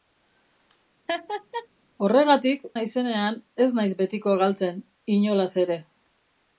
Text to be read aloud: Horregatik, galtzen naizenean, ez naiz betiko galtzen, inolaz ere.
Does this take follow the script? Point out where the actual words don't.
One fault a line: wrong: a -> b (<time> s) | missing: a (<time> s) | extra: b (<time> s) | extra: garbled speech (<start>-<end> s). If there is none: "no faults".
missing: galtzen (2.6 s)